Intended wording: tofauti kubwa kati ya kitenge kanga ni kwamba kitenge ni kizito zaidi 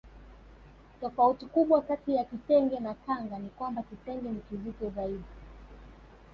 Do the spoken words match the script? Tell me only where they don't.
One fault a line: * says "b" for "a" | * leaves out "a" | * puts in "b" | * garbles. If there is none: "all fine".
* puts in "na"